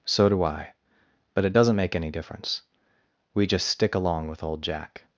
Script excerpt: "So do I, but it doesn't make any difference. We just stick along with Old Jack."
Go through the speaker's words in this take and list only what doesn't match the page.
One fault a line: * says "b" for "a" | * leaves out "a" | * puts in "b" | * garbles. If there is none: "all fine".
all fine